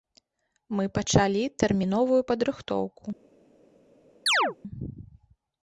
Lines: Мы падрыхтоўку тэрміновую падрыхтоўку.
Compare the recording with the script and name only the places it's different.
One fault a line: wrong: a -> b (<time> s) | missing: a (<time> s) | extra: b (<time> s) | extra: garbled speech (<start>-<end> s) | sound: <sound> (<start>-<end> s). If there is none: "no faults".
wrong: падрыхтоўку -> пачалі (0.9 s)
sound: chirp (4.3-4.6 s)